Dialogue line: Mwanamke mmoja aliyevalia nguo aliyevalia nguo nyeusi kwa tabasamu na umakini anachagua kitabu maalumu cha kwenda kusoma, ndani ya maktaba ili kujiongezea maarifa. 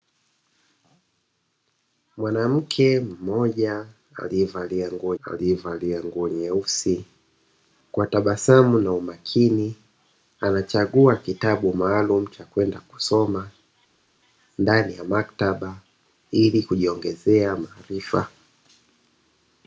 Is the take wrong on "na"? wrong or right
right